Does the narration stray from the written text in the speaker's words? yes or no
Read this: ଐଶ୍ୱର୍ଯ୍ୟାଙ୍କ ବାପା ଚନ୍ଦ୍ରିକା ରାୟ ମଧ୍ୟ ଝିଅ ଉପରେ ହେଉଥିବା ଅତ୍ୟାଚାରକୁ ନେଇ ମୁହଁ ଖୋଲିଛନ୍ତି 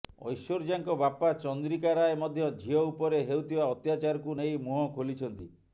no